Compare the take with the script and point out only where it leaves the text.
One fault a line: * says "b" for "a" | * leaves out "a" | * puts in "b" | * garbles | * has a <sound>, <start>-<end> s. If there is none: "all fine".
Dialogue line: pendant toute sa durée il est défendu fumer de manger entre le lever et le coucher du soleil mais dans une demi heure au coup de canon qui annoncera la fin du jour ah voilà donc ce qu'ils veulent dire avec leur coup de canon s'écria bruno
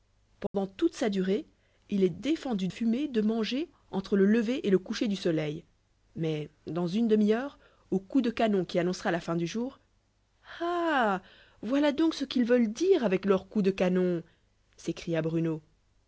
* has a dropout, 0.5-0.5 s